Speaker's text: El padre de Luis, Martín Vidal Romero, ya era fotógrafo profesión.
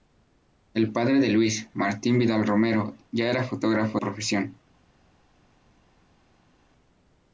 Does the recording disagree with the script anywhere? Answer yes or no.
no